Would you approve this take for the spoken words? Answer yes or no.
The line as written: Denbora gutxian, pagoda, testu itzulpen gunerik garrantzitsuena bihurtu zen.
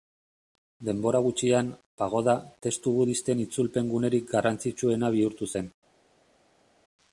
no